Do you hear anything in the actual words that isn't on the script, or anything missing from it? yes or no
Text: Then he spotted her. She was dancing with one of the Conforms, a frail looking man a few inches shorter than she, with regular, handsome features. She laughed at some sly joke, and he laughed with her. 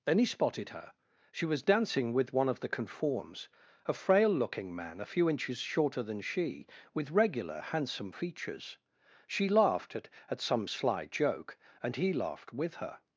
yes